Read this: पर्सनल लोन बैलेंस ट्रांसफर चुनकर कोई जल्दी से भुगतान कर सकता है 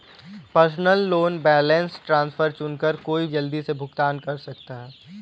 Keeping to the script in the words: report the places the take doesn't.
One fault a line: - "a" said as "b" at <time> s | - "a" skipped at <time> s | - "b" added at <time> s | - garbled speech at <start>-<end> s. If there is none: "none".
none